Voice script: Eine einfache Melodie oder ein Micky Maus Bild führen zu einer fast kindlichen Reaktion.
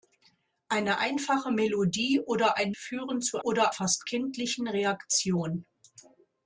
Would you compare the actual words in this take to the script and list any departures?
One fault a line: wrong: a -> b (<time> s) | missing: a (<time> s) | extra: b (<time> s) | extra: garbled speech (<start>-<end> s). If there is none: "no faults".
missing: Micky Maus Bild (2.7 s)
wrong: einer -> oder (3.4 s)